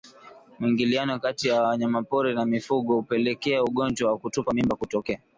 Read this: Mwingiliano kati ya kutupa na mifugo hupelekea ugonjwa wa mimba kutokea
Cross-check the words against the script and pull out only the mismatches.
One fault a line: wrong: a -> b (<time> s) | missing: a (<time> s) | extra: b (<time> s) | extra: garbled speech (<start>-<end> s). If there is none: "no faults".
wrong: kutupa -> wanyamapori (1.6 s)
extra: kutupa (4.2 s)